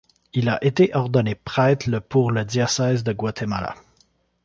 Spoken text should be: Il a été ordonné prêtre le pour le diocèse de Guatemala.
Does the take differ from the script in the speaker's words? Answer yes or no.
no